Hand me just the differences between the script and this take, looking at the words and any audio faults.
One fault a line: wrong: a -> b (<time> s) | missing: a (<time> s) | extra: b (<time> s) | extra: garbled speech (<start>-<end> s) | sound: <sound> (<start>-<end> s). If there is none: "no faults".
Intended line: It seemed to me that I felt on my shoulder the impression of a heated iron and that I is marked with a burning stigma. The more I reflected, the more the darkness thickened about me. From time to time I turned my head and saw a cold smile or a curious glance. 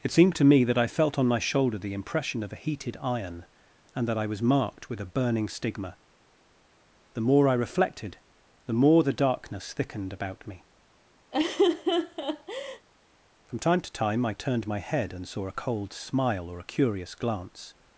wrong: is -> was (4.2 s)
sound: laugh (11.3-12.9 s)